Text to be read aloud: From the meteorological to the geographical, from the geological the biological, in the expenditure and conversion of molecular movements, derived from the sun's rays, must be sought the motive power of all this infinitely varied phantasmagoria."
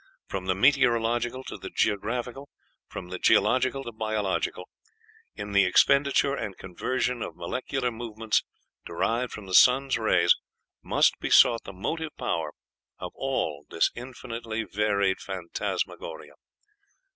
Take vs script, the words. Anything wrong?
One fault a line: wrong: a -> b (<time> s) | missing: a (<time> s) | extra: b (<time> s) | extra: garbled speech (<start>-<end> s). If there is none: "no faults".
no faults